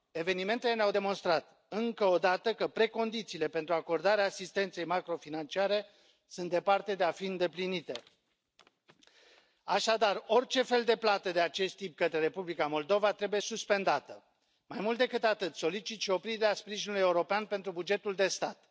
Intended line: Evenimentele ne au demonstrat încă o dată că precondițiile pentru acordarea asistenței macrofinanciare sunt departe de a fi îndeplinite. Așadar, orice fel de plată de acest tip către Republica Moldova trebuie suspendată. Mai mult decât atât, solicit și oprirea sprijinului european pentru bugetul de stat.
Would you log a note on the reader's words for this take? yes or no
no